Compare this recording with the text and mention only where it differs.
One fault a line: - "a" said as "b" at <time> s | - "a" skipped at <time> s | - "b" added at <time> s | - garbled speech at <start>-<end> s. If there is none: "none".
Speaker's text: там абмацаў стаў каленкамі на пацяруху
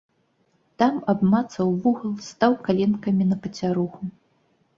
- "вугал" added at 1.8 s